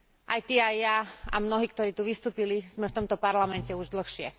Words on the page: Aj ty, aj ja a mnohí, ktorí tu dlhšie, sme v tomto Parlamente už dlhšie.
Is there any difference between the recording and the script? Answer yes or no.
yes